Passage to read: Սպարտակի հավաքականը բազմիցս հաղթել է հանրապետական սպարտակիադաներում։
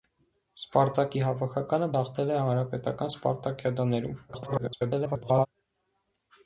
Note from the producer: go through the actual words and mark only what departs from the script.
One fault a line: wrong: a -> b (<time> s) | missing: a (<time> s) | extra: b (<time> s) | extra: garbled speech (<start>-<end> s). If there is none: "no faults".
missing: բազմիցս (1.9 s)
extra: garbled speech (4.3-5.5 s)